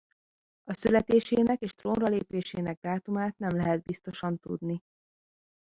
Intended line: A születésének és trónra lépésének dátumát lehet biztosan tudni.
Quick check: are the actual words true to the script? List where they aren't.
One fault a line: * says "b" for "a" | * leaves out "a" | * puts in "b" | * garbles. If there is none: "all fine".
* puts in "nem"